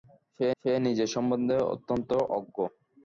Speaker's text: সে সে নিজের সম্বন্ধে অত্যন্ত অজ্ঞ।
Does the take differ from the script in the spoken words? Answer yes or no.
no